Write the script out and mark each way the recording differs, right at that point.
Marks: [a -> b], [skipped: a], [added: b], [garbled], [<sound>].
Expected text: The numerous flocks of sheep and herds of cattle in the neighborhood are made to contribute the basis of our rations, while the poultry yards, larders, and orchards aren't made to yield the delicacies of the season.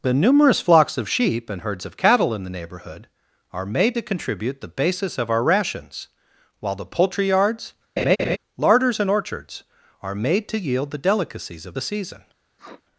The numerous flocks of sheep and herds of cattle in the neighborhood are made to contribute the basis of our rations, while the poultry yards, [laugh] larders, and orchards [aren't -> are] made to yield the delicacies of the season. [sniff]